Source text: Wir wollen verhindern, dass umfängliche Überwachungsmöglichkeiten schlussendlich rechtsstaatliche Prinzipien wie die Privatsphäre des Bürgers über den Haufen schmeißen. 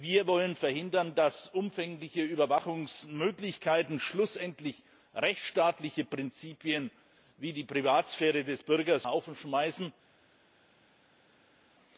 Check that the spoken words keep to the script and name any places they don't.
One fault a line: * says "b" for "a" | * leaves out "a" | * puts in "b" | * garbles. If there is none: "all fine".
* leaves out "über den"